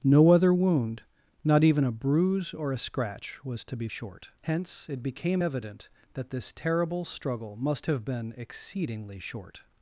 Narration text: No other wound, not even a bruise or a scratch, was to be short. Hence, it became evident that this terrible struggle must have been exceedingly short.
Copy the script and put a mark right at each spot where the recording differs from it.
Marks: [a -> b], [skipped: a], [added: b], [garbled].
No other wound, not even a bruise or a scratch, was to be short. Hence, it became evident that this terrible struggle must have been exceedingly short.